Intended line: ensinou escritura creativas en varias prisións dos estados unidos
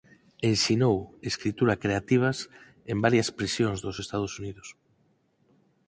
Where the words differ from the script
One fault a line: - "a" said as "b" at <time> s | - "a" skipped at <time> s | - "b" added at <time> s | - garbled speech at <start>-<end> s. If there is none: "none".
none